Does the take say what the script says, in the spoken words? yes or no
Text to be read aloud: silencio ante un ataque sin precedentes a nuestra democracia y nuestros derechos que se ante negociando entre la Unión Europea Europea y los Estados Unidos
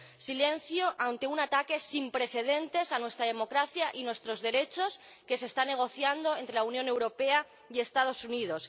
no